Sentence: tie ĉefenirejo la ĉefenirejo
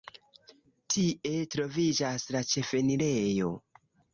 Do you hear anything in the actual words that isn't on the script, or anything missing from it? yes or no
yes